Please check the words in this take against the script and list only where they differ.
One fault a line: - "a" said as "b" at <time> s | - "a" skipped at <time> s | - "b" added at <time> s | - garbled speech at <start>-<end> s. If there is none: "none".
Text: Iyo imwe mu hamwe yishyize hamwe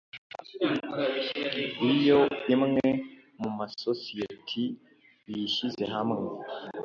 - "hamwe" said as "masosiyeti" at 3.6 s